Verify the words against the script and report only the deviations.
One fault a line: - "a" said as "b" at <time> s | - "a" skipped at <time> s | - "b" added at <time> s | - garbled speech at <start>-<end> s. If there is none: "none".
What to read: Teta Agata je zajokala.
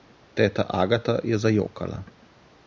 none